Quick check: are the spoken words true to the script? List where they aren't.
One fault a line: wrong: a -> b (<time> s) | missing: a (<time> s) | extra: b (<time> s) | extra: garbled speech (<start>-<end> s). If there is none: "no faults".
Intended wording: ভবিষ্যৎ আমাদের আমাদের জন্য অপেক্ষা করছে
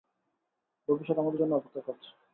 missing: আমাদের (1.4 s)